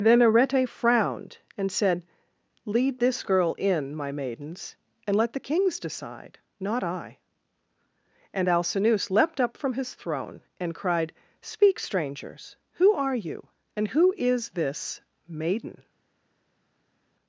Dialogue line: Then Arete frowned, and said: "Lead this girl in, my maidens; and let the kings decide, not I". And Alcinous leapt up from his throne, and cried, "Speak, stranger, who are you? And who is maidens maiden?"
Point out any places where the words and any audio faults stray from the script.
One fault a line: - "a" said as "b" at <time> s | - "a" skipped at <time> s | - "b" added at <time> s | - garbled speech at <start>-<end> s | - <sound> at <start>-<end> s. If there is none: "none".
- "stranger" said as "strangers" at 11.8 s
- "maidens" said as "this" at 14.6 s